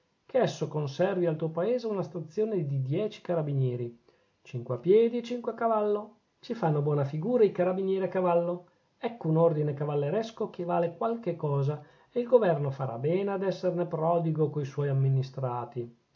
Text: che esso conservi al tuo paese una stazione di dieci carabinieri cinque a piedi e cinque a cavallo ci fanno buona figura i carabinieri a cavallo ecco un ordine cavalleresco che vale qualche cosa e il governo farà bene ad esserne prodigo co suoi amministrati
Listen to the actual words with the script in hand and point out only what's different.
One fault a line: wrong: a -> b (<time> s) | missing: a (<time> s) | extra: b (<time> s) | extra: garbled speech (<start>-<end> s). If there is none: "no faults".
no faults